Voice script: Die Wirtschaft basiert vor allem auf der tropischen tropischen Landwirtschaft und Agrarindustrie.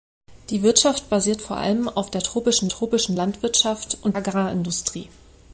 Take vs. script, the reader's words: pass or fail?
pass